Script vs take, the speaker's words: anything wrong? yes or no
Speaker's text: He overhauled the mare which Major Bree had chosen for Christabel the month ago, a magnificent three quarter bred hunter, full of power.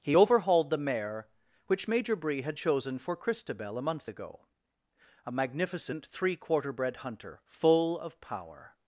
yes